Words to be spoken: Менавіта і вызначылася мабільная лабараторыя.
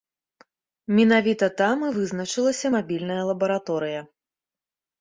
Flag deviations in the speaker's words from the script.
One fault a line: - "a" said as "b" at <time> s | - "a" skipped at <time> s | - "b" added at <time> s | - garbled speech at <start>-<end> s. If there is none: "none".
- "там" added at 1.6 s